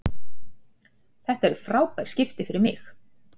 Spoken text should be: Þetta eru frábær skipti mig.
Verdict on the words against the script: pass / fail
fail